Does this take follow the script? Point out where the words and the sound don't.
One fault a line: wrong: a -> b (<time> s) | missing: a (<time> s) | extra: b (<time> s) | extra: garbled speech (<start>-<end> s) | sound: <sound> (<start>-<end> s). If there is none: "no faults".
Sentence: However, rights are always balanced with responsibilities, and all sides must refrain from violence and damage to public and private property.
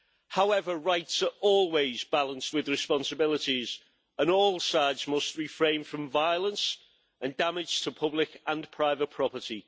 no faults